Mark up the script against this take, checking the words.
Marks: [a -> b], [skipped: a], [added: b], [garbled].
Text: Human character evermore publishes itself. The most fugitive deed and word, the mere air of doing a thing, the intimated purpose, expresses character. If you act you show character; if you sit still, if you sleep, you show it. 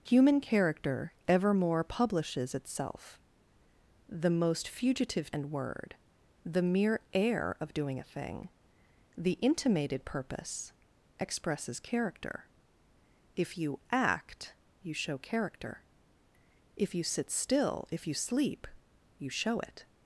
Human character evermore publishes itself. The most fugitive [skipped: deed] and word, the mere air of doing a thing, the intimated purpose, expresses character. If you act you show character; if you sit still, if you sleep, you show it.